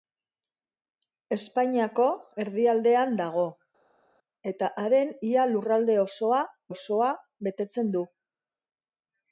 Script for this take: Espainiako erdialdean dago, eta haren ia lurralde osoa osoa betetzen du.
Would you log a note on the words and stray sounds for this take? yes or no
no